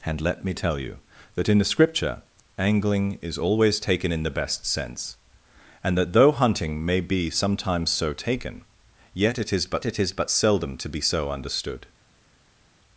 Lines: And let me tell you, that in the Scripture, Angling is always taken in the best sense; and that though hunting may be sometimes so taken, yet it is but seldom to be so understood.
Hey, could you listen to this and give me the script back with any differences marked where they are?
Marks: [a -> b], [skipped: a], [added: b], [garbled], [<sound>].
And let me tell you, that in the Scripture, Angling is always taken in the best sense; and that though hunting may be sometimes so taken, yet it is but [added: it is but] seldom to be so understood.